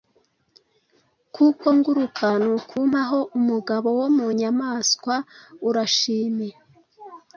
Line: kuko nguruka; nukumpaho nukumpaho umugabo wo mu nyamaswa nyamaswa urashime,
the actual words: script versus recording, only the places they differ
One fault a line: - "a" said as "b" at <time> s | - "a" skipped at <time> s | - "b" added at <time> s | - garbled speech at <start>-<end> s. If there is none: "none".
- "nukumpaho" skipped at 3.2 s
- "nyamaswa" skipped at 5.2 s